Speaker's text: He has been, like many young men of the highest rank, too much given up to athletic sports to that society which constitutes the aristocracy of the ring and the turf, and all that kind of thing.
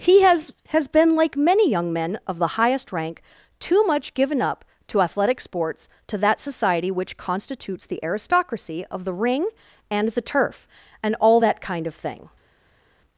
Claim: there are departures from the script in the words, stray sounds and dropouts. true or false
true